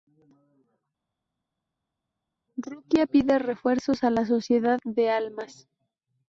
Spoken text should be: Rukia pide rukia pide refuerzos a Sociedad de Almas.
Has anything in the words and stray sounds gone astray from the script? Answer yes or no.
yes